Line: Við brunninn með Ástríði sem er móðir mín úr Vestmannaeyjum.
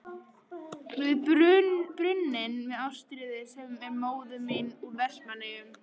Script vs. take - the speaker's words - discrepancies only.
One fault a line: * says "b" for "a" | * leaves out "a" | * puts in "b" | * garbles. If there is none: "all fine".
all fine